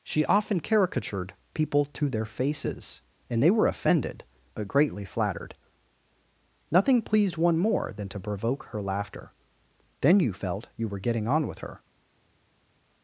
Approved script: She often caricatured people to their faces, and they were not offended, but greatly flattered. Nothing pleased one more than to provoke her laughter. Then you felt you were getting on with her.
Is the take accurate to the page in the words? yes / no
no